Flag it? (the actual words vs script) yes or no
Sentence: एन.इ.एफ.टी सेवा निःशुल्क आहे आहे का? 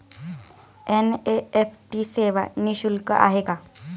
yes